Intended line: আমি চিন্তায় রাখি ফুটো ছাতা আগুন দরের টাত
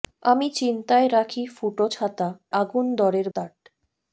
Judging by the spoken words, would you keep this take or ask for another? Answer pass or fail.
pass